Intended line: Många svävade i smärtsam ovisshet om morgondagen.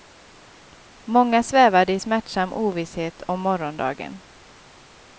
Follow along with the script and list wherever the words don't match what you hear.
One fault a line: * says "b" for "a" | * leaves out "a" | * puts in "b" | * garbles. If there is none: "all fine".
all fine